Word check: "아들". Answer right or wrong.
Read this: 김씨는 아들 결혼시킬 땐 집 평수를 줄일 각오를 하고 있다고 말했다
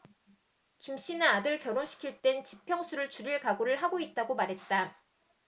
right